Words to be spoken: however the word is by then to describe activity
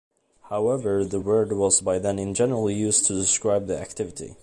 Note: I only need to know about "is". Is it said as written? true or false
false